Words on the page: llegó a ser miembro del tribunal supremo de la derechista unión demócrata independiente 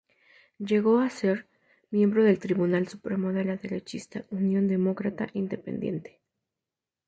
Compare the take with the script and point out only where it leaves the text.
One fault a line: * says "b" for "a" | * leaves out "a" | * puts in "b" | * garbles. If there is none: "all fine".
all fine